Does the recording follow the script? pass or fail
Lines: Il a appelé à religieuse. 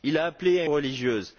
pass